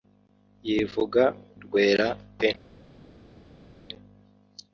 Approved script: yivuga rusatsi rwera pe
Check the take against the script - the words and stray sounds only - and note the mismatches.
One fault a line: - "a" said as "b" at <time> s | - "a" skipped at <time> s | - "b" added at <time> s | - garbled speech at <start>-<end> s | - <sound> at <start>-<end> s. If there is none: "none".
- "rusatsi" skipped at 1.2 s